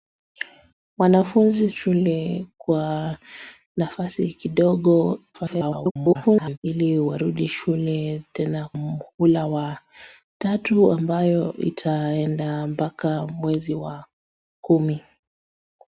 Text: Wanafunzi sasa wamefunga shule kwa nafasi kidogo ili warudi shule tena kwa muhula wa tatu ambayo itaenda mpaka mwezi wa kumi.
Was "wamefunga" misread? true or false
true